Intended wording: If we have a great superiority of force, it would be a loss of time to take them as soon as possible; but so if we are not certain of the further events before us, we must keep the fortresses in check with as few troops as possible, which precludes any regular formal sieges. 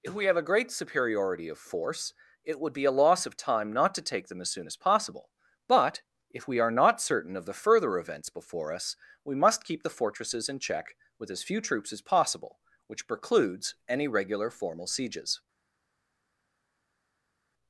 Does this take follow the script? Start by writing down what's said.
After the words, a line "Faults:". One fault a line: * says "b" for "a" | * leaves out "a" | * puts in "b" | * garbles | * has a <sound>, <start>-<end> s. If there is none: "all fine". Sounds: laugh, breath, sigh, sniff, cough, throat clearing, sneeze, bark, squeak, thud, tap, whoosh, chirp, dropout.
If we have a great superiority of force, it would be a loss of time not to take them as soon as possible; but if we are not certain of the further events before us, we must keep the fortresses in check with as few troops as possible, which precludes any regular formal sieges.
Faults:
* puts in "not"
* leaves out "so"